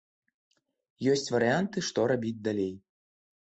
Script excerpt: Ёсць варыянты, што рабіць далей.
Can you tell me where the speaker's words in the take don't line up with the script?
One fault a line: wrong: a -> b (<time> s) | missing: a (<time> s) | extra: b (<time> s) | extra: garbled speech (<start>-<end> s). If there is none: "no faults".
no faults